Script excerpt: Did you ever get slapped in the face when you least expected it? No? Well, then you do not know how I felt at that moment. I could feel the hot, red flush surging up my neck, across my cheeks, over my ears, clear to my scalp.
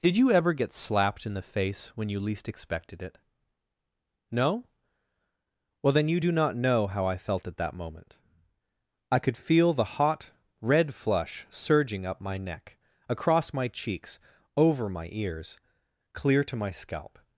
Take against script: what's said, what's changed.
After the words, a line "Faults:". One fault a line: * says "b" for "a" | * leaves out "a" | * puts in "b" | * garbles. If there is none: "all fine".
Did you ever get slapped in the face when you least expected it? No? Well, then you do not know how I felt at that moment. I could feel the hot, red flush surging up my neck, across my cheeks, over my ears, clear to my scalp.
Faults:
all fine